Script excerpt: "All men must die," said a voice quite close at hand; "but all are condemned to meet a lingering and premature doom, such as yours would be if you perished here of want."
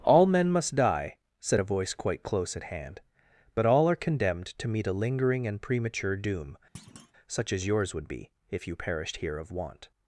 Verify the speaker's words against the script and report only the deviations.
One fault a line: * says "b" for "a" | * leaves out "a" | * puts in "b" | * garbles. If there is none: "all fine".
all fine